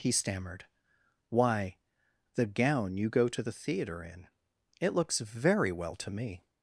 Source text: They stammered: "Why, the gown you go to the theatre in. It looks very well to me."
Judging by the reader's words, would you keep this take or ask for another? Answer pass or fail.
fail